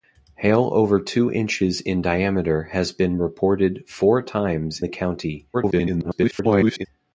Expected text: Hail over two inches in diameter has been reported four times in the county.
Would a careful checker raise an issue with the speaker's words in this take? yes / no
yes